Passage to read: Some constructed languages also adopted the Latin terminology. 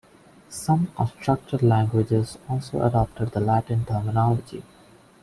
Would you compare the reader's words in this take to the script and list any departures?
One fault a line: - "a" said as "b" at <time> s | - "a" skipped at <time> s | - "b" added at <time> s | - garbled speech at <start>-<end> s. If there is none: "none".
none